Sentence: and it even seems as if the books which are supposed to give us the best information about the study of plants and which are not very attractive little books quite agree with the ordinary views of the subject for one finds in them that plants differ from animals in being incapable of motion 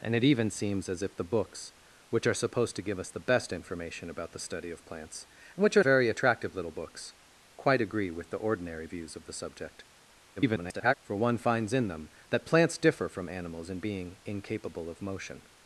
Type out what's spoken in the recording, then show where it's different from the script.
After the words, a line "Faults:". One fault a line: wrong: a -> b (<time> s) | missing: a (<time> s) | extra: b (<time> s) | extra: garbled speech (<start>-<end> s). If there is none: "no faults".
and it even seems as if the books which are supposed to give us the best information about the study of plants and which are very attractive little books quite agree with the ordinary views of the subject [garbled] for one finds in them that plants differ from animals in being incapable of motion
Faults:
missing: not (5.8 s)
extra: garbled speech (10.4-10.9 s)